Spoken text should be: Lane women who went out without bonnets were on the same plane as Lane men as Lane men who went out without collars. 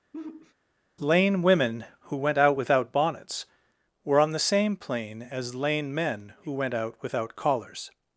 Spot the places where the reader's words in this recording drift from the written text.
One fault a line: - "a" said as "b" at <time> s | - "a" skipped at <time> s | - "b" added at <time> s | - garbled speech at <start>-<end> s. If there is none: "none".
- "as Lane men" skipped at 6.3 s